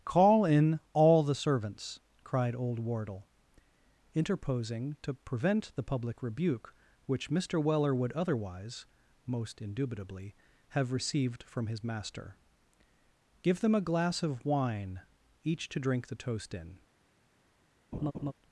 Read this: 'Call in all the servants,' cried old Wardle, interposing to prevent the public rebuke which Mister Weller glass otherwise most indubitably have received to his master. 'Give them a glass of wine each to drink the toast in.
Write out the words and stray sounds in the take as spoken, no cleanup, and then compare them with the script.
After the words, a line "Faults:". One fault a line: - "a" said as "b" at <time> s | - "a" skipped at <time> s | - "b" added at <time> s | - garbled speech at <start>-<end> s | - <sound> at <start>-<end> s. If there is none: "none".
'Call in all the servants,' cried old Wardle, interposing to prevent the public rebuke which Mister Weller would otherwise most indubitably have received from his master. 'Give them a glass of wine each to drink the toast in.
Faults:
- "glass" said as "would" at 7.9 s
- "to" said as "from" at 11.4 s
- laugh at 17.9-18.3 s